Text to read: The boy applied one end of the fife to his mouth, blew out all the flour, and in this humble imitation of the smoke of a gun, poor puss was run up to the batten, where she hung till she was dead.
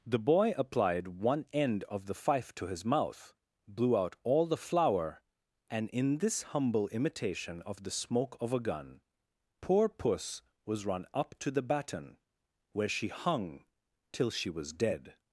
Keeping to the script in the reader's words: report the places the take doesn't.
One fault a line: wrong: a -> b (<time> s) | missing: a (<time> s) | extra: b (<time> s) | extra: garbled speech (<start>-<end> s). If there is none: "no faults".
no faults